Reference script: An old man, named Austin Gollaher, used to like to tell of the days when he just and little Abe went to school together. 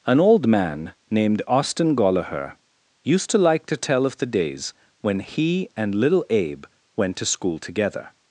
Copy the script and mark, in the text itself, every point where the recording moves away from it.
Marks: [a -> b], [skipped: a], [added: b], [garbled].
An old man, named Austin Gollaher, used to like to tell of the days when he [skipped: just] and little Abe went to school together.